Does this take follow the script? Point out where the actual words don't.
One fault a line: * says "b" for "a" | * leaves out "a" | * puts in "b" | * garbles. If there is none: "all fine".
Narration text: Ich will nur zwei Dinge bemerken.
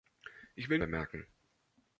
* leaves out "nur zwei Dinge"